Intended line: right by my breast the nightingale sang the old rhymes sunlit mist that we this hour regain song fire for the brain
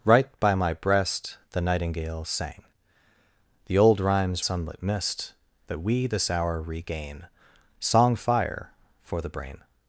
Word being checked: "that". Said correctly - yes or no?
yes